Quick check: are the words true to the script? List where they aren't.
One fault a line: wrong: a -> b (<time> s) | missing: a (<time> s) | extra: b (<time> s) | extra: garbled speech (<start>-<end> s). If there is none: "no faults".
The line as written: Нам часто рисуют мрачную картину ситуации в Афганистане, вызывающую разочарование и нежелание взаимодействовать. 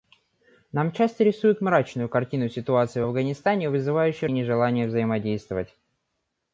missing: разочарование (4.3 s)